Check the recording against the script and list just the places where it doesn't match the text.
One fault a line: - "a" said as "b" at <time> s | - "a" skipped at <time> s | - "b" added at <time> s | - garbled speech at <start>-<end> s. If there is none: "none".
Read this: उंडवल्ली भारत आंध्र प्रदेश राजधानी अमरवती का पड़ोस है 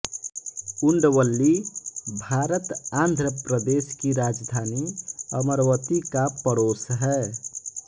- "की" added at 4.0 s